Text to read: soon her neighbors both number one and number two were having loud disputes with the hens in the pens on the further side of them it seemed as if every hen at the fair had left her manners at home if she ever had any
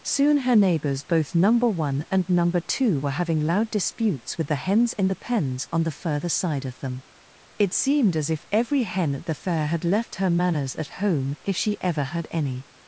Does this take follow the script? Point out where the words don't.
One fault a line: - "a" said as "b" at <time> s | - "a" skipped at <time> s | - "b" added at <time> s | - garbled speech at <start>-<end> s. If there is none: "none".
none